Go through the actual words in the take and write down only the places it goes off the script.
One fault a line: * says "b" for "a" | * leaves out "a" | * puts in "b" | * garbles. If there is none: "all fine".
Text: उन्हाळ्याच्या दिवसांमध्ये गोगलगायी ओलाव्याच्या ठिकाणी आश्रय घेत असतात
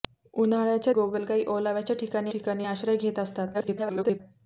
* leaves out "दिवसांमध्ये"
* puts in "ठिकाणी"
* garbles